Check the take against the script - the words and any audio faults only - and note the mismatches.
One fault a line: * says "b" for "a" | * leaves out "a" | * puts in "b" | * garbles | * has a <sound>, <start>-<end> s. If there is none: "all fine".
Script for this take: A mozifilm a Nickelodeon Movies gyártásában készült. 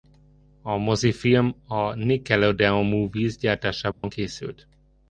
* has a dropout, 3.9-4.0 s